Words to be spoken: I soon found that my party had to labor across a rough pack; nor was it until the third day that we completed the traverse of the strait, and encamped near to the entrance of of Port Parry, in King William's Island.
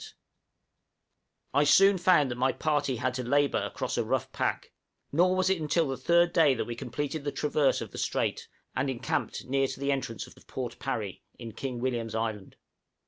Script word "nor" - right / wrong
right